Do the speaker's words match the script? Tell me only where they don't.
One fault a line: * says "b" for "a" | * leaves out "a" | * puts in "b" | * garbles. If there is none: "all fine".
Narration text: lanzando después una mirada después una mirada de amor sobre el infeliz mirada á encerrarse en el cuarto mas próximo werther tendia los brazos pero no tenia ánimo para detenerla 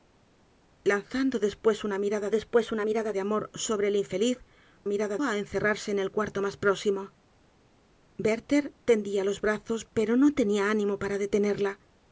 all fine